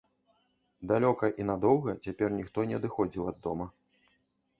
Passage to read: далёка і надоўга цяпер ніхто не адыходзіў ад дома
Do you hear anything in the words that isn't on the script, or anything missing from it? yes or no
no